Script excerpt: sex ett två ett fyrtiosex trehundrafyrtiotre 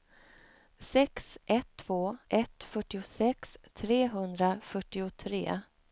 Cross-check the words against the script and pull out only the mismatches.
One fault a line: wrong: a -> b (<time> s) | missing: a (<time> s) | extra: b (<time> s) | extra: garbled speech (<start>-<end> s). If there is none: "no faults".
no faults